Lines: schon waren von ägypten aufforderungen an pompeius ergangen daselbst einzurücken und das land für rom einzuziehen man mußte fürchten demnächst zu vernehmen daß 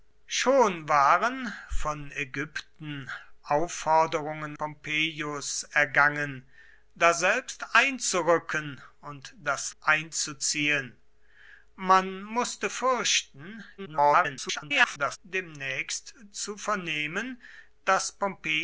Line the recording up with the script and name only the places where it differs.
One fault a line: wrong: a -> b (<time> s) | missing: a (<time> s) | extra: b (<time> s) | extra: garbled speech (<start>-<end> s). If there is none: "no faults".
missing: an (4.6 s)
missing: land für rom (9.7 s)
extra: garbled speech (13.8-15.2 s)